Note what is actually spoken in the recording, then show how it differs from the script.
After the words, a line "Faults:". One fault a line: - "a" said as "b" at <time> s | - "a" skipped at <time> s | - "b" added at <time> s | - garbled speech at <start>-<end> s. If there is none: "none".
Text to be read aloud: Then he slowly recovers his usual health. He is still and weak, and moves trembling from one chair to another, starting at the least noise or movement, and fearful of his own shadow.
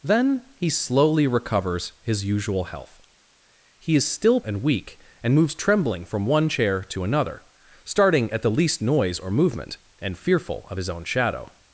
Then he slowly recovers his usual health. He is still and weak, and moves trembling from one chair to another, starting at the least noise or movement, and fearful of his own shadow.
Faults:
none